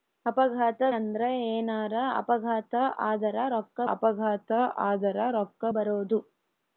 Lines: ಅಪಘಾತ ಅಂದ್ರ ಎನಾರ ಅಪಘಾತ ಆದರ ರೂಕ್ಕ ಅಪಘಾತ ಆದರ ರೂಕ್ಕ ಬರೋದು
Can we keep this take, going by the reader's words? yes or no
yes